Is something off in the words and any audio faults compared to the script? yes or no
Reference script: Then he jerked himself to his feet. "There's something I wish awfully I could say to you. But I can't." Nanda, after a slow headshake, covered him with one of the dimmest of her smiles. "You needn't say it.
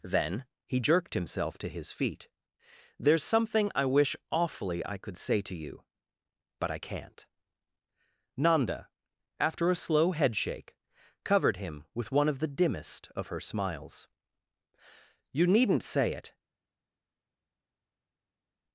no